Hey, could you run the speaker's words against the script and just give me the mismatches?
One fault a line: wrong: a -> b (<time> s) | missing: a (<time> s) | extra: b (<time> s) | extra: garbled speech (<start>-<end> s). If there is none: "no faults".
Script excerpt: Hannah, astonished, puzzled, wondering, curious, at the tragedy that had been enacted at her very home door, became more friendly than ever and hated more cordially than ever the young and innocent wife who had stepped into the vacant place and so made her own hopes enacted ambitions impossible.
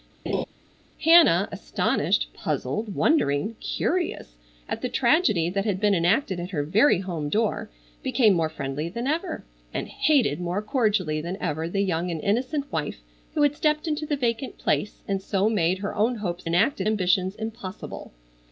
no faults